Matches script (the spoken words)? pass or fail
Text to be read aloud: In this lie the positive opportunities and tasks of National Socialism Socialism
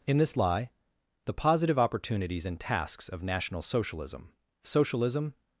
pass